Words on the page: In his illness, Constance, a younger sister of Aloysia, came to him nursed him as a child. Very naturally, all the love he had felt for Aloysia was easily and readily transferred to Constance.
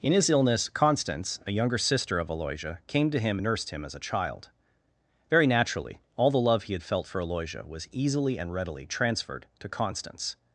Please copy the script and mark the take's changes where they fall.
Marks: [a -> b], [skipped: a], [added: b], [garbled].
In his illness, Constance, a younger sister of Aloysia, came to him nursed him as a child. Very naturally, all the love he had felt for Aloysia was easily and readily transferred to Constance.